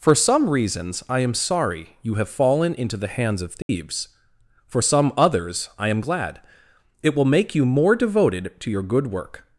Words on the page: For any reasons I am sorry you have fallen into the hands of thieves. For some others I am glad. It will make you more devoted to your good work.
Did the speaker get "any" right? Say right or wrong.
wrong